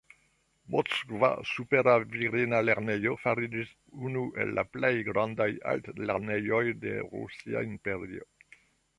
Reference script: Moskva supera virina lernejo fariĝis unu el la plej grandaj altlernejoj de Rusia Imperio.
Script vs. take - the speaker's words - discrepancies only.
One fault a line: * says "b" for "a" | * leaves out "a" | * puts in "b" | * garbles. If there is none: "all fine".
all fine